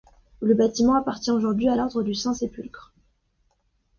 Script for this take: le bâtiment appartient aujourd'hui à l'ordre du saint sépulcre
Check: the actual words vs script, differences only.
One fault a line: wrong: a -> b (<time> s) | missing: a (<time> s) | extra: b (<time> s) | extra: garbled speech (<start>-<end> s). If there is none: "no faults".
no faults